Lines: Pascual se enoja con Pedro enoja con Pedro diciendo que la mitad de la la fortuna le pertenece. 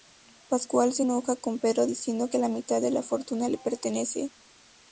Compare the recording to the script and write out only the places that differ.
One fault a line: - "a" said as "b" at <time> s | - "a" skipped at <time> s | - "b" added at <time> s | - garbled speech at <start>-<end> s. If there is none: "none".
- "enoja con Pedro" skipped at 1.9 s
- "la" skipped at 3.0 s